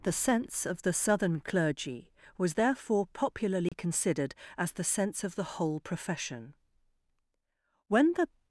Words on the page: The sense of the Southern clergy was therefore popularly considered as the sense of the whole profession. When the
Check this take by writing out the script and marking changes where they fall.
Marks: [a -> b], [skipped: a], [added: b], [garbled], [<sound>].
The sense of the Southern clergy was therefore popularly [dropout] considered as the sense of the whole profession. When the